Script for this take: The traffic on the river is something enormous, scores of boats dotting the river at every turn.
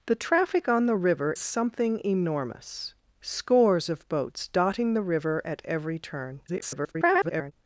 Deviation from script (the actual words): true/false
true